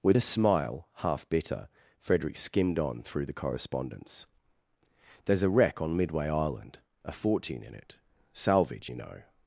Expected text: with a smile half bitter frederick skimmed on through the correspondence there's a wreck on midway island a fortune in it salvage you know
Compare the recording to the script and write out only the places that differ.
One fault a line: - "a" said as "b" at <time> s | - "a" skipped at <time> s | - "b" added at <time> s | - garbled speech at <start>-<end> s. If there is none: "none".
none